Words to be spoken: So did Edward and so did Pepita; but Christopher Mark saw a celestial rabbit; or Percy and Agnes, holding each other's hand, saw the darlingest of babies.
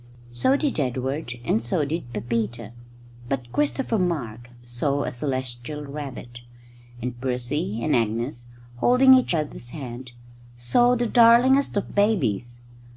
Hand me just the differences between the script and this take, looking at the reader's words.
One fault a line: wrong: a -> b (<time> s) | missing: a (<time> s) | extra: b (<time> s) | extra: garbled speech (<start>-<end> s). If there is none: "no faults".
wrong: or -> and (7.0 s)